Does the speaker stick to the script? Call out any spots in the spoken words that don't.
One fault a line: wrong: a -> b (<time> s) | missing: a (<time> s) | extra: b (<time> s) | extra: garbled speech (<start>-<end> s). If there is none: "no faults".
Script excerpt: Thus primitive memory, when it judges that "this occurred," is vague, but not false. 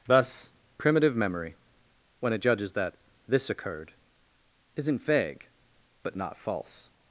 wrong: is -> isn't (4.8 s)